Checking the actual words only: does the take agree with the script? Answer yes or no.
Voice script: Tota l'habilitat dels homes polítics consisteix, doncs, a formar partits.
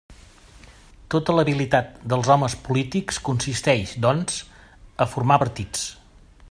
yes